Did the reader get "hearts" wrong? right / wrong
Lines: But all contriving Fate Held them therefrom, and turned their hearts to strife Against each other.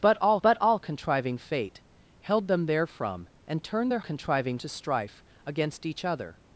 wrong